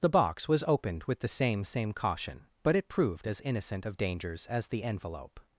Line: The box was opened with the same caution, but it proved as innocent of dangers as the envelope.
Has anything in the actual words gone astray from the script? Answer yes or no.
yes